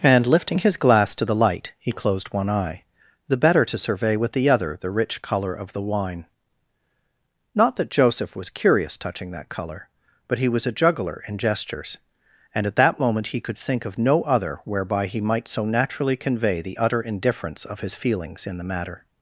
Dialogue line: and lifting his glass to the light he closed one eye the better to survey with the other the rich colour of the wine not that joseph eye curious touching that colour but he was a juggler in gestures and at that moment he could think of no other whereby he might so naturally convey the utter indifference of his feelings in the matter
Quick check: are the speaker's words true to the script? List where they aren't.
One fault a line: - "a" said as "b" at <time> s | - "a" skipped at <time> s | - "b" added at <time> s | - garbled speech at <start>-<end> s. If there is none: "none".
- "eye" said as "was" at 8.3 s